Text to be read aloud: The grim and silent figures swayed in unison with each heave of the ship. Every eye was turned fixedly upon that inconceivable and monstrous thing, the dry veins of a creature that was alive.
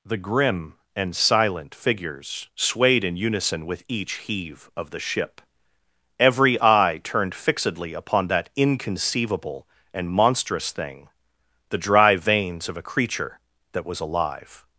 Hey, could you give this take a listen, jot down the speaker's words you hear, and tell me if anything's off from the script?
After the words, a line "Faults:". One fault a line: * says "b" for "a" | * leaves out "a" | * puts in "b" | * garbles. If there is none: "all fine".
The grim and silent figures swayed in unison with each heave of the ship. Every eye turned fixedly upon that inconceivable and monstrous thing, the dry veins of a creature that was alive.
Faults:
* leaves out "was"